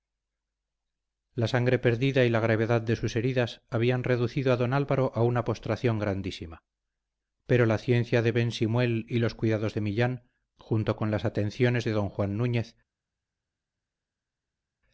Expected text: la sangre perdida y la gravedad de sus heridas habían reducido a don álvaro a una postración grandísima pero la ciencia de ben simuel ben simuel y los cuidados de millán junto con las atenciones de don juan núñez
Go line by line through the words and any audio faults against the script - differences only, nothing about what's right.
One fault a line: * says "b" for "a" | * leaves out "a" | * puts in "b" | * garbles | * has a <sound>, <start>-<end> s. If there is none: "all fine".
* leaves out "ben simuel"